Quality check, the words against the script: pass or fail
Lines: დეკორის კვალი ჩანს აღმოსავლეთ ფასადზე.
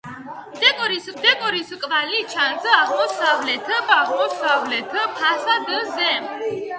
fail